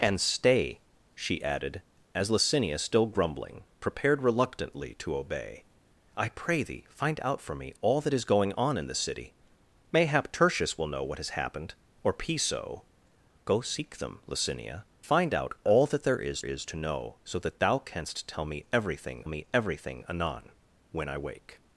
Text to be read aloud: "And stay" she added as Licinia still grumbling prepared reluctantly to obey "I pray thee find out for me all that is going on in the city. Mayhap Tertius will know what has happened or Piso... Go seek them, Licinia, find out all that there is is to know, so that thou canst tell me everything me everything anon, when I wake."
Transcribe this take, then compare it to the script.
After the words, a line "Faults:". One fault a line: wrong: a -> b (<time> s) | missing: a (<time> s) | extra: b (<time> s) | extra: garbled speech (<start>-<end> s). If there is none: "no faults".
"And stay" she added as Licinia still grumbling prepared reluctantly to obey "I pray thee find out for me all that is going on in the city. Mayhap Tertius will know what has happened or Piso... Go seek them, Licinia, find out all that there is is to know, so that thou canst tell me everything me everything anon, when I wake."
Faults:
no faults